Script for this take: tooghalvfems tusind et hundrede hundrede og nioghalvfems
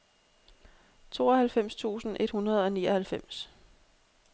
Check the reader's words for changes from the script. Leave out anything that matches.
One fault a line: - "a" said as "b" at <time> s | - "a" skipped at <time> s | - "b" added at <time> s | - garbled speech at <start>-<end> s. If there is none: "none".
- "hundrede" skipped at 2.6 s